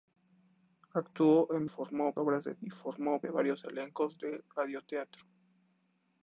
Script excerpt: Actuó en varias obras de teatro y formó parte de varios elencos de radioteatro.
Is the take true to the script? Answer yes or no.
no